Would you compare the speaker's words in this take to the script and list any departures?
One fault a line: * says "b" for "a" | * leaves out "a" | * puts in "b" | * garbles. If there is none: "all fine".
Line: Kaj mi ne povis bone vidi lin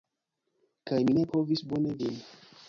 * leaves out "vidi"